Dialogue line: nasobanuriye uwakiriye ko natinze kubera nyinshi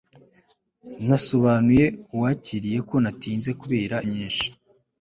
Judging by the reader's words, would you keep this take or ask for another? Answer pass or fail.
pass